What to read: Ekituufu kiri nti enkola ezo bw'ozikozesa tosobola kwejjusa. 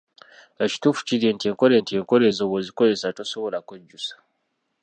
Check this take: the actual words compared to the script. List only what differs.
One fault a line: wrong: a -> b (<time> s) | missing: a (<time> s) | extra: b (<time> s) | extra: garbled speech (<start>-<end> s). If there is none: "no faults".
extra: nti enkola (1.8 s)